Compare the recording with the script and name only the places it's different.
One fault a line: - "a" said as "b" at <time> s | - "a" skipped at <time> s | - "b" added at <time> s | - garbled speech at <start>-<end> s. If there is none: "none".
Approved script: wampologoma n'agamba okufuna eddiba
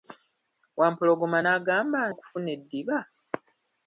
none